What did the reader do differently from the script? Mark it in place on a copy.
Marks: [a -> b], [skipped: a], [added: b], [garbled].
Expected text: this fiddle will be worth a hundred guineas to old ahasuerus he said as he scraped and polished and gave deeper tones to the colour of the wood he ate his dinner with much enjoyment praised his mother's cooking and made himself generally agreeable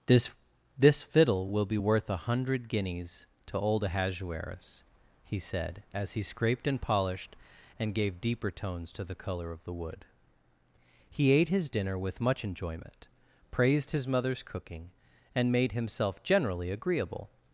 this [added: this] fiddle will be worth a hundred guineas to old ahasuerus he said as he scraped and polished and gave deeper tones to the colour of the wood he ate his dinner with much enjoyment praised his mother's cooking and made himself generally agreeable